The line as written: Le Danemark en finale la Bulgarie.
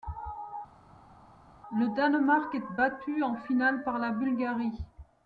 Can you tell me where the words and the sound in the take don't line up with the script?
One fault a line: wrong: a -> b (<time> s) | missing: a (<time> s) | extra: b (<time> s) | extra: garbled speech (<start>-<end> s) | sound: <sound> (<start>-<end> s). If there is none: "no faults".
extra: est battu (2.6 s)
extra: par (3.8 s)